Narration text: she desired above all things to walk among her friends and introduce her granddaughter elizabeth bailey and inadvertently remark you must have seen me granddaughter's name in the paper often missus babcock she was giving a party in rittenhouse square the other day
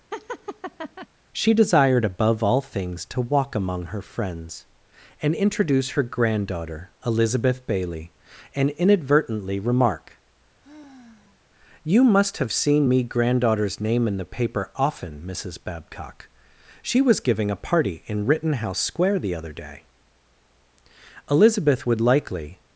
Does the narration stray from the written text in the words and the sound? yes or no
yes